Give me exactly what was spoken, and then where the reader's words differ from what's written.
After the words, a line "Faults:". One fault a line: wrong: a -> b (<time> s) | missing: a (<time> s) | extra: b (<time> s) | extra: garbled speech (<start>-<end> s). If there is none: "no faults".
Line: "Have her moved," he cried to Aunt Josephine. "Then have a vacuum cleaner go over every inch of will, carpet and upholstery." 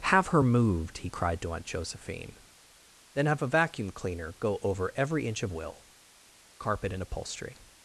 "Have her moved," he cried to Aunt Josephine. "Then have a vacuum cleaner go over every inch of will, carpet and upholstery."
Faults:
no faults